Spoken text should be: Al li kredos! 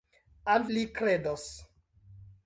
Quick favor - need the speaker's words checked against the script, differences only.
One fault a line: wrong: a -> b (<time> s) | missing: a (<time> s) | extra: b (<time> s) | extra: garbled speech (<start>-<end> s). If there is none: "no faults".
no faults